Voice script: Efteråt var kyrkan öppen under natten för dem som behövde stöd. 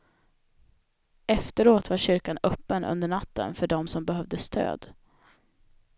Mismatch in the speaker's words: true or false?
false